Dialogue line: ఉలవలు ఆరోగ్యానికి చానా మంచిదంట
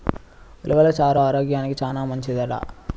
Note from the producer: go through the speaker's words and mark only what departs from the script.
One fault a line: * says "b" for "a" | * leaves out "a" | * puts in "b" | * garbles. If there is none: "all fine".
* puts in "చారు"